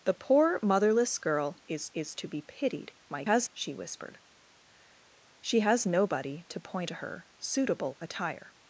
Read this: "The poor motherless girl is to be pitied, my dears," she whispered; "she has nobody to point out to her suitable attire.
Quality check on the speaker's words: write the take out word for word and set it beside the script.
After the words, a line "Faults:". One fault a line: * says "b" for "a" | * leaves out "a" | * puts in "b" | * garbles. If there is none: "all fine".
"The poor motherless girl is is to be pitied, my has," she whispered; "she has nobody to point to her suitable attire.
Faults:
* puts in "is"
* says "has" for "dears"
* leaves out "out"